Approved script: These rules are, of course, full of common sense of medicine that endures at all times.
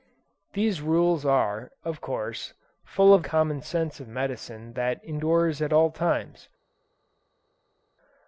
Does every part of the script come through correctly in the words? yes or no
yes